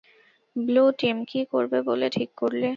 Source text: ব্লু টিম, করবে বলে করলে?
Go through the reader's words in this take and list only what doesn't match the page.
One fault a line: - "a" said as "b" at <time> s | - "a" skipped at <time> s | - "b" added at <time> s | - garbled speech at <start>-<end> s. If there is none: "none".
- "কী" added at 1.2 s
- "ঠিক" added at 2.1 s